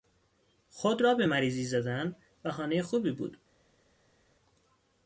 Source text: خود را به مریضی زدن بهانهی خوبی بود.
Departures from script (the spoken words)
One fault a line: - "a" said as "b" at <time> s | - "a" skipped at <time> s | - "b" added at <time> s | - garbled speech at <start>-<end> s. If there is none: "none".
none